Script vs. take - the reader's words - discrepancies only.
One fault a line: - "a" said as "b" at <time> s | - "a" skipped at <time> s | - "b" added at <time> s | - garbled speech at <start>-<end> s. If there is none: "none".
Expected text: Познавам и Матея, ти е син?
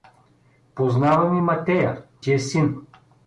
none